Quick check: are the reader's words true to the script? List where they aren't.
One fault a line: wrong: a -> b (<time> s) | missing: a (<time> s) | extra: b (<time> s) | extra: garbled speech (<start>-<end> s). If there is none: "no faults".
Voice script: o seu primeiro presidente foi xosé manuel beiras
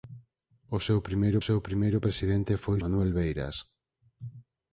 extra: seu primeiro (1.5 s)
missing: xosé (2.8 s)